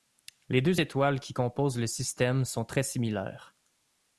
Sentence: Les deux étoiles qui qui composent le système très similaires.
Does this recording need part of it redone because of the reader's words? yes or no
yes